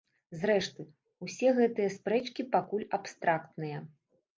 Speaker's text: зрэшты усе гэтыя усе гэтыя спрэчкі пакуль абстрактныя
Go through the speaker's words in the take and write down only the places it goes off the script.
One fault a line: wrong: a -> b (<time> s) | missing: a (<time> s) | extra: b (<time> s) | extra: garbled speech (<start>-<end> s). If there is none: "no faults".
missing: усе гэтыя (1.9 s)